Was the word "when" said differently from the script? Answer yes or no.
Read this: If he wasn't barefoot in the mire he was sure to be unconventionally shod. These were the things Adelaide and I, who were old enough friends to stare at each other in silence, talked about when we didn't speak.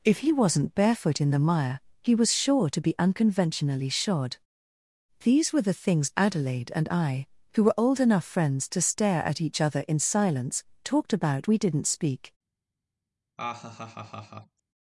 yes